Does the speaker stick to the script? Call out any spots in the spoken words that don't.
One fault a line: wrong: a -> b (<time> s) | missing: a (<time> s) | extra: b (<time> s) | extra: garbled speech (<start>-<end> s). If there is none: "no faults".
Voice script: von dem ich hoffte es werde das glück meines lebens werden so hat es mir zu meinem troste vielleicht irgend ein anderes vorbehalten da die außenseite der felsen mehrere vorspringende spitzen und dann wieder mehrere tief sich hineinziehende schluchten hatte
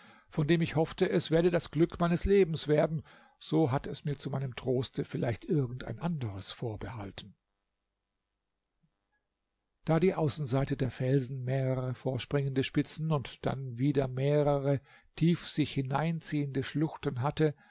no faults